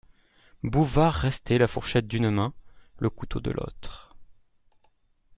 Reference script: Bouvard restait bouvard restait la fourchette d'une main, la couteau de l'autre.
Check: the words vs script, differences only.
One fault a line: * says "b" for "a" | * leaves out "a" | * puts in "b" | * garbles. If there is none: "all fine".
* leaves out "bouvard restait"
* says "le" for "la"